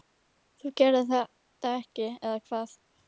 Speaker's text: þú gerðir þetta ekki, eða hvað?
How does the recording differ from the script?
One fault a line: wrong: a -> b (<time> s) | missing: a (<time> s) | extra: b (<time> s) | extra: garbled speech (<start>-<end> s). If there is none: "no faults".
no faults